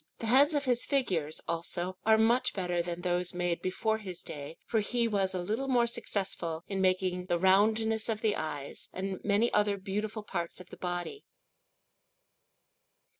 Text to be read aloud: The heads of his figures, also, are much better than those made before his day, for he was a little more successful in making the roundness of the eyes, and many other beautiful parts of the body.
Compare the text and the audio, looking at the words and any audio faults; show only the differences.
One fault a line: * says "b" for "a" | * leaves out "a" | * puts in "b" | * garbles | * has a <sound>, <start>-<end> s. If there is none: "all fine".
all fine